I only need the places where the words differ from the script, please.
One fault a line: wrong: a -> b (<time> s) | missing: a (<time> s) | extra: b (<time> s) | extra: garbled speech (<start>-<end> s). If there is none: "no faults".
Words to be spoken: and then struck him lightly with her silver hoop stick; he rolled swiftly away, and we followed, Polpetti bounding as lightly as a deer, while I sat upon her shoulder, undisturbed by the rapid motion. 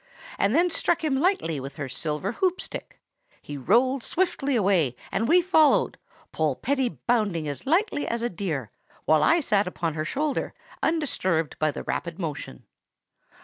no faults